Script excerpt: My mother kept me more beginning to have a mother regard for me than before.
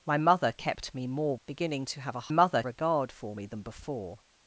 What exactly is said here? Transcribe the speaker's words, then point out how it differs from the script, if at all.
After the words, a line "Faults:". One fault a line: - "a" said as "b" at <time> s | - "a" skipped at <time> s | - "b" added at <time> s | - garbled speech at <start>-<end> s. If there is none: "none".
My mother kept me more beginning to have a mother regard for me than before.
Faults:
none